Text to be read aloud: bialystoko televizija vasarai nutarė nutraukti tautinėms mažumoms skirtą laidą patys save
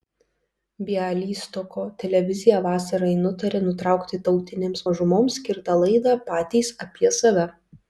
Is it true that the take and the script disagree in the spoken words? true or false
true